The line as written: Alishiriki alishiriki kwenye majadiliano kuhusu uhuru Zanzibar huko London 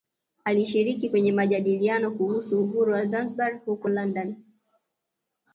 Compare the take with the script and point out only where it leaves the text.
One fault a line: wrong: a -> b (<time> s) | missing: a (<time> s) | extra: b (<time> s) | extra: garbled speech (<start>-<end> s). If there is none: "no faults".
missing: alishiriki (1.1 s)
extra: wa (2.9 s)